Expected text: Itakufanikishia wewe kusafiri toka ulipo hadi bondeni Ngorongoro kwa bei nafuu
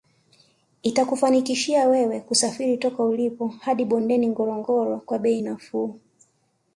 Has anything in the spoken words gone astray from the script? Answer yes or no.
no